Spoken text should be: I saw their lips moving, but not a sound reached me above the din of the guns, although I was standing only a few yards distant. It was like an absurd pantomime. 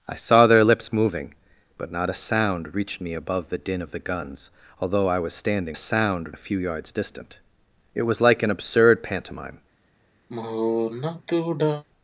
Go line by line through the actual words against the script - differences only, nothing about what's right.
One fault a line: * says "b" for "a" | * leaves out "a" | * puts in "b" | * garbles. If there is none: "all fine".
* says "sound" for "only"